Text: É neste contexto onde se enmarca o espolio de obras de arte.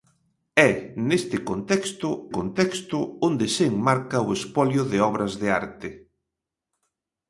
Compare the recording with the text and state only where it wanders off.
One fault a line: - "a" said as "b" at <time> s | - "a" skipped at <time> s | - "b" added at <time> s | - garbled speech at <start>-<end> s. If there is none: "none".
- "contexto" added at 2.4 s